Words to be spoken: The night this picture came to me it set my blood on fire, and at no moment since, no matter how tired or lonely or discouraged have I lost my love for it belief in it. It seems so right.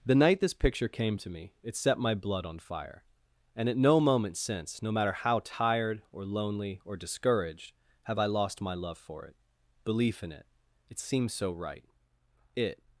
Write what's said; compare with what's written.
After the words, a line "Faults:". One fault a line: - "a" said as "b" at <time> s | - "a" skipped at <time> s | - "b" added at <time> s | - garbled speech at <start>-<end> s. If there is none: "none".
The night this picture came to me it set my blood on fire, and at no moment since, no matter how tired or lonely or discouraged have I lost my love for it belief in it. It seems so right. It
Faults:
- "It" added at 12.6 s